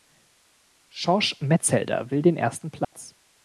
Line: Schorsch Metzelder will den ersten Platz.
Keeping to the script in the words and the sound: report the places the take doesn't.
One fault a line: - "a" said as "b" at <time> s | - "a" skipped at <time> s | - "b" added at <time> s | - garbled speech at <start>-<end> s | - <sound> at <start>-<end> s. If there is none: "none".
- dropout at 2.8-2.9 s